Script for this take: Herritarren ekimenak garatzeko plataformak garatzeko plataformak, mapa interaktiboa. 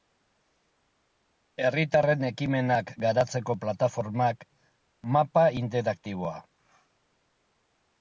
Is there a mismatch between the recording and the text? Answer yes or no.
yes